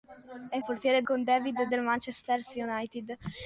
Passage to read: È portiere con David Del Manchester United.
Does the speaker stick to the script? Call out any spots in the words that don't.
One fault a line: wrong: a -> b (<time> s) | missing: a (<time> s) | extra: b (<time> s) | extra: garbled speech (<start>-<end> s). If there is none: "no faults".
no faults